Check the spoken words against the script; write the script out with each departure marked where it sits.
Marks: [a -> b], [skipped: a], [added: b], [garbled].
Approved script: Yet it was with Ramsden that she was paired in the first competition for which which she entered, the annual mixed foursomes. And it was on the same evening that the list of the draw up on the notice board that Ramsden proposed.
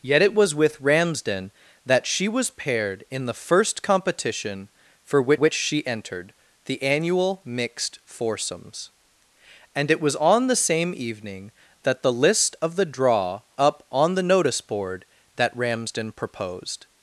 Yet it was with Ramsden that she was paired in the first competition for which which she entered, the annual mixed foursomes. And it was on the same evening that the list of the draw up on the notice board that Ramsden proposed.